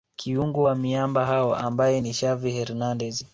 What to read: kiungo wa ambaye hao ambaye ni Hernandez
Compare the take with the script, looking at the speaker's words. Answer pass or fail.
fail